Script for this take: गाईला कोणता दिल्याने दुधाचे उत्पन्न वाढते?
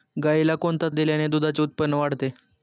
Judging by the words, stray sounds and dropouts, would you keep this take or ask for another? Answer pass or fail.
pass